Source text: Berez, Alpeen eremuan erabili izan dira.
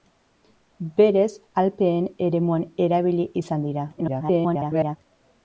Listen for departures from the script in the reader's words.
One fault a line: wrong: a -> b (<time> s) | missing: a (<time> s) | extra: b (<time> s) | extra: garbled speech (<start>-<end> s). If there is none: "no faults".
extra: garbled speech (4.0-5.0 s)